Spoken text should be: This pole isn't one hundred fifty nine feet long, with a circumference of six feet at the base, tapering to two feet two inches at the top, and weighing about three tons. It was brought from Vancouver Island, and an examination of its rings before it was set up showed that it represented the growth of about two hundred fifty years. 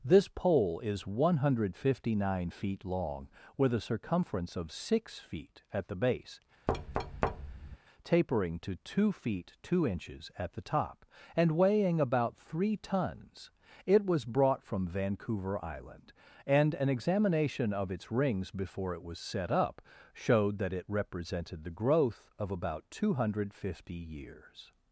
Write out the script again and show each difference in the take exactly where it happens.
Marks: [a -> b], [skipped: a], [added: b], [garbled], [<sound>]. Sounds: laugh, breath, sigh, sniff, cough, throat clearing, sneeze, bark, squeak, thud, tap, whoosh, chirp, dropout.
This pole [isn't -> is] one hundred fifty nine feet long, with a circumference of six feet at the base, [thud] tapering to two feet two inches at the top, and weighing about three tons. It was brought from Vancouver Island, and an examination of its rings before it was set up showed that it represented the growth of about two hundred fifty years.